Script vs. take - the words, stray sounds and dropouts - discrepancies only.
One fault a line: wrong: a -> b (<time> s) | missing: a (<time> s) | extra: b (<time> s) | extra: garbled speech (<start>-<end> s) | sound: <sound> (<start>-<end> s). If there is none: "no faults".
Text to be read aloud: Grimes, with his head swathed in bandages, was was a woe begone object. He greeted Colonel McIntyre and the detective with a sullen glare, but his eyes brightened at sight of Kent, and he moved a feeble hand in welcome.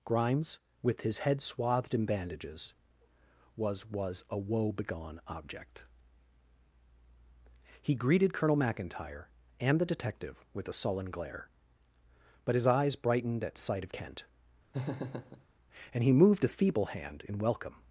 sound: laugh (14.7-15.5 s)